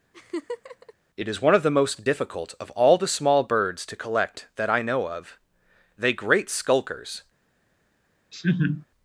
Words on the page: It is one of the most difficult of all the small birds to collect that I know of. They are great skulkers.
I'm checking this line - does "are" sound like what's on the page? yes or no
no